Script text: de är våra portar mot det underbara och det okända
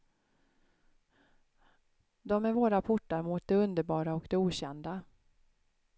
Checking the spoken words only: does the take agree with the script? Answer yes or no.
yes